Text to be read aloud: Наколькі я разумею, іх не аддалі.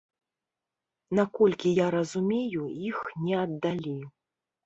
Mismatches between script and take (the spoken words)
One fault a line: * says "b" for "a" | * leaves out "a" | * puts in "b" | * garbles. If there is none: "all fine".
all fine